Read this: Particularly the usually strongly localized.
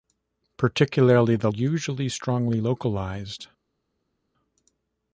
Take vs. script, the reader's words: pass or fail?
pass